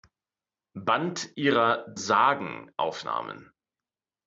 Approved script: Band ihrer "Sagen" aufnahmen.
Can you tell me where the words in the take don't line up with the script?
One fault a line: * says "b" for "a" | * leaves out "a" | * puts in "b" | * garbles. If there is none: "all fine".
all fine